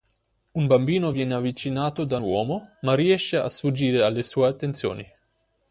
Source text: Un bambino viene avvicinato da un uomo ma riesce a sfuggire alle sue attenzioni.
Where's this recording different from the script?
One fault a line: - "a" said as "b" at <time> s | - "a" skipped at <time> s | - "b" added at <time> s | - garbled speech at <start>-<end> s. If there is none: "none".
- "un" skipped at 2.2 s